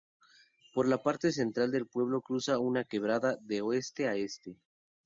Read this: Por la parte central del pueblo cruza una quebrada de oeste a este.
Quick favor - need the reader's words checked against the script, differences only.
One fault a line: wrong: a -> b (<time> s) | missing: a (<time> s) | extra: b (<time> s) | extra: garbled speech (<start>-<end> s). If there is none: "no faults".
no faults